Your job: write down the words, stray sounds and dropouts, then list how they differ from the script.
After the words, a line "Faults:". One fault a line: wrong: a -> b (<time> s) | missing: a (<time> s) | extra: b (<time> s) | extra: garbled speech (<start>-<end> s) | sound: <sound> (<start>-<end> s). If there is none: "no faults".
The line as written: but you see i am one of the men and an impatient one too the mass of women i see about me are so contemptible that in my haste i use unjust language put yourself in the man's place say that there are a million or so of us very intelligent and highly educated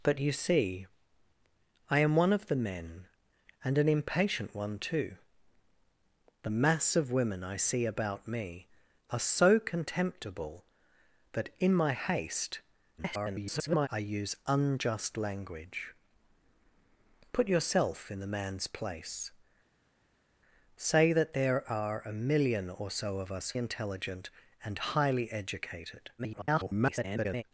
but you see i am one of the men and an impatient one too the mass of women i see about me are so contemptible that in my haste [garbled] i use unjust language put yourself in the man's place say that there are a million or so of us intelligent and highly educated [garbled]
Faults:
extra: garbled speech (13.0-13.9 s)
missing: very (23.5 s)
extra: garbled speech (26.2-27.4 s)